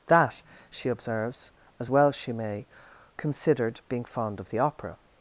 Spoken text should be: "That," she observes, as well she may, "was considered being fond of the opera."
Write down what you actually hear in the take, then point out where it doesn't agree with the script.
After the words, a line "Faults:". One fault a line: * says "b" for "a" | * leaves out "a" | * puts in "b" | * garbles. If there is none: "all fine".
"That," she observes, as well she may, "considered being fond of the opera."
Faults:
* leaves out "was"